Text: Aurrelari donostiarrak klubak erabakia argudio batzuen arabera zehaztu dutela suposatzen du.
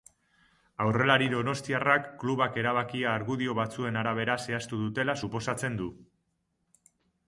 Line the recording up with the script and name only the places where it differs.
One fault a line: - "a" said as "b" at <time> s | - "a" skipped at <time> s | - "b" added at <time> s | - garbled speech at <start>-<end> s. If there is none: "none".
none